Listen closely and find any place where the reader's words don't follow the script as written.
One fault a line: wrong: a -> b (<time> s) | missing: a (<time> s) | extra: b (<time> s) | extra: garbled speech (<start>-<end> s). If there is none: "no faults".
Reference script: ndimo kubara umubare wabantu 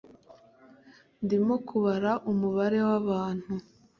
no faults